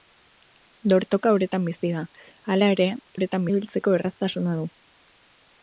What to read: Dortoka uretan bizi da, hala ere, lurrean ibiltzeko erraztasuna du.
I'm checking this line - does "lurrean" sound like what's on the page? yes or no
no